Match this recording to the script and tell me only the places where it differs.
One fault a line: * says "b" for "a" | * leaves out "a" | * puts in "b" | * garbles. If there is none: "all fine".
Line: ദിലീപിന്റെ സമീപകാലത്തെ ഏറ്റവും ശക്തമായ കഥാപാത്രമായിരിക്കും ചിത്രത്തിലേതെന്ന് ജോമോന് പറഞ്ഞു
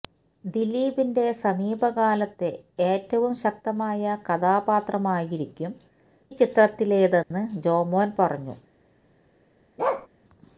all fine